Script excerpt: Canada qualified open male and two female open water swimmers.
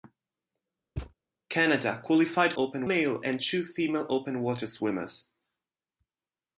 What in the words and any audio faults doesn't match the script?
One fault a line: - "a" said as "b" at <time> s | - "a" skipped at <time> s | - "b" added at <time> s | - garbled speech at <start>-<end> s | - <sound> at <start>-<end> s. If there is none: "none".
- thud at 1.0-1.1 s